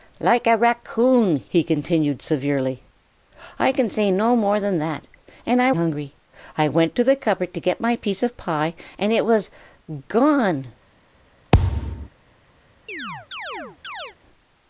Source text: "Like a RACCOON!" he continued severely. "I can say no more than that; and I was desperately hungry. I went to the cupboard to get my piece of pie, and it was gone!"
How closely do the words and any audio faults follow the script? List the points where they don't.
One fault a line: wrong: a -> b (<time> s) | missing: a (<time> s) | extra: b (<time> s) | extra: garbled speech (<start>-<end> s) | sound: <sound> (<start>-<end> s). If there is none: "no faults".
missing: was desperately (5.7 s)
sound: thud (11.5-12.1 s)
sound: chirp (12.9-14.2 s)